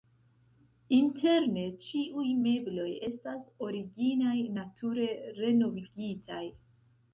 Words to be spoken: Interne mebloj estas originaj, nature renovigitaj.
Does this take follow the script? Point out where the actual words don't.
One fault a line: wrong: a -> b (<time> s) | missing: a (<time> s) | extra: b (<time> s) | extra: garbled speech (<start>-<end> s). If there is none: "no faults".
extra: ĉiuj (1.9 s)